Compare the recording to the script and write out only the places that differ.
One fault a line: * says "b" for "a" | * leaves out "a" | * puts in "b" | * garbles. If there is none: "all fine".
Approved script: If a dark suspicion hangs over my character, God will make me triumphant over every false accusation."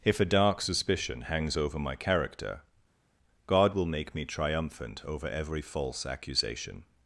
all fine